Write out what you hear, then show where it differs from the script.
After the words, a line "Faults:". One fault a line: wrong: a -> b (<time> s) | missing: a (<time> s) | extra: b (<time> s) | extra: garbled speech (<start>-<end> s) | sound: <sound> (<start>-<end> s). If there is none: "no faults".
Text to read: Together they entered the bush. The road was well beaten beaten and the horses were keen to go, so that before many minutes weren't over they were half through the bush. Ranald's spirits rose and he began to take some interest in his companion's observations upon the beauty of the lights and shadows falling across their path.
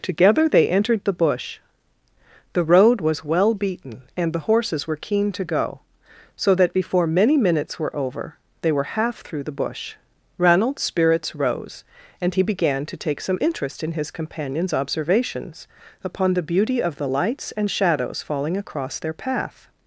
Together they entered the bush. The road was well beaten and the horses were keen to go, so that before many minutes were over they were half through the bush. Ranald's spirits rose and he began to take some interest in his companion's observations upon the beauty of the lights and shadows falling across their path.
Faults:
missing: beaten (4.0 s)
wrong: weren't -> were (7.8 s)